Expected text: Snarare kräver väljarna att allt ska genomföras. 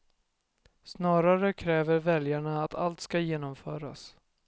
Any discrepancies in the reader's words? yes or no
no